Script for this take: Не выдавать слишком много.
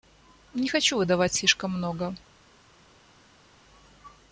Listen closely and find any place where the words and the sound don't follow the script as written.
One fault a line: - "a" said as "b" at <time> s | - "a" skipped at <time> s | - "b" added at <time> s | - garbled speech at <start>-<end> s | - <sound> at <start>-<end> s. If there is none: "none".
- "хочу" added at 0.7 s